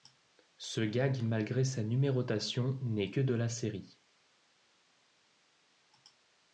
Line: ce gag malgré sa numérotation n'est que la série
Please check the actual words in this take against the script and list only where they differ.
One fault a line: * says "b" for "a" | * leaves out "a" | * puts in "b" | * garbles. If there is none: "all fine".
* puts in "de"